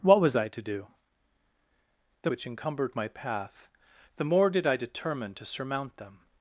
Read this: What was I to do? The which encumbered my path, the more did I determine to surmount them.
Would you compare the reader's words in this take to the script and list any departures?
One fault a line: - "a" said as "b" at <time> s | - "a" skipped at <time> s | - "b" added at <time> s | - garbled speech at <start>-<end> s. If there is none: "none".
none